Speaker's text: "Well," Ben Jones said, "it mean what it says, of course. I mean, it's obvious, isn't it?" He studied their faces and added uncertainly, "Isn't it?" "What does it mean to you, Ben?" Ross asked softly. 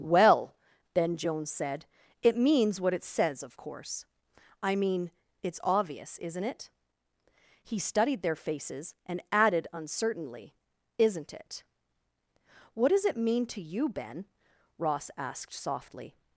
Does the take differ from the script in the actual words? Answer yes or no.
yes